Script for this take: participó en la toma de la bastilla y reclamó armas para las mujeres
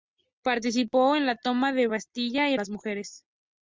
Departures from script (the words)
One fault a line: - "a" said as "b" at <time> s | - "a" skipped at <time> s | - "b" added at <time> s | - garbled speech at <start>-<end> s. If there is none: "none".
- "reclamó armas para" skipped at 2.6 s